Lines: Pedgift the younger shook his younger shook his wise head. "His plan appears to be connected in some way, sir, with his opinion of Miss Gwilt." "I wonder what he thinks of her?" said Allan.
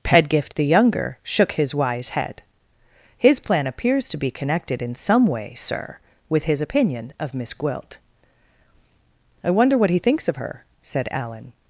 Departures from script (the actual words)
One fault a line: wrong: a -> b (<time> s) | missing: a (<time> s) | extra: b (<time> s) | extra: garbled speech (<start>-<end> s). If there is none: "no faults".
missing: younger shook his (1.8 s)